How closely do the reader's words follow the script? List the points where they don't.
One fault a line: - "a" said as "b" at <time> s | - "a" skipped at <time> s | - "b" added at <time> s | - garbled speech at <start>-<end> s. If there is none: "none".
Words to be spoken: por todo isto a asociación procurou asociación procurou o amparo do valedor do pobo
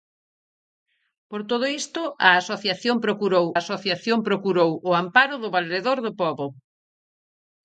none